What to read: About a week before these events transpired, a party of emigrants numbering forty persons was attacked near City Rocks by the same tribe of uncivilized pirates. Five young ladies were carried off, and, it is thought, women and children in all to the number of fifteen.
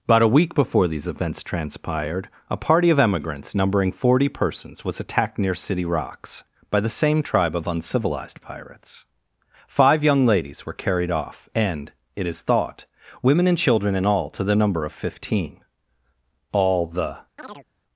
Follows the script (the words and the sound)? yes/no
no